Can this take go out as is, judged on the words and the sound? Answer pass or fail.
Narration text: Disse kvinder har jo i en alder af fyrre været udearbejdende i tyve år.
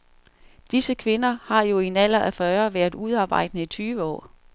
pass